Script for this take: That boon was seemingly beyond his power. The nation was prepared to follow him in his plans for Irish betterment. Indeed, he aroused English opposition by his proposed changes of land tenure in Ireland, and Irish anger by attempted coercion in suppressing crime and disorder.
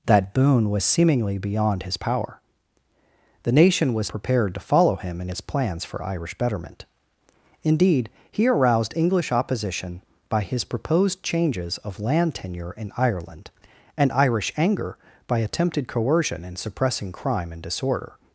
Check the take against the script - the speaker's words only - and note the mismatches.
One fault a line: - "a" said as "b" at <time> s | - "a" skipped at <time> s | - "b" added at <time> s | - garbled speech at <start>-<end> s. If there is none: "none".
none